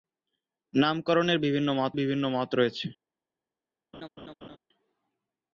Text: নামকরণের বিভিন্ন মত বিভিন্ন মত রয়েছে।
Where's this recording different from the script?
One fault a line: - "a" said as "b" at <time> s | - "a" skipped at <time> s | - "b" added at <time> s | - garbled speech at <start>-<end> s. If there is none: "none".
none